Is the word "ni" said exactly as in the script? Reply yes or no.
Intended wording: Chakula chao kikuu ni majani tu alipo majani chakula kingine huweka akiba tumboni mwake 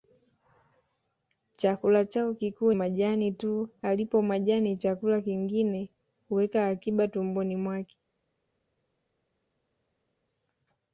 no